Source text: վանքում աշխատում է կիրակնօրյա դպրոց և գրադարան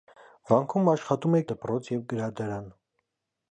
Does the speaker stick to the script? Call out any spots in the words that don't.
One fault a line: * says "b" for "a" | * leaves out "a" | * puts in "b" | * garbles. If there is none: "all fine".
* leaves out "կիրակնօրյա"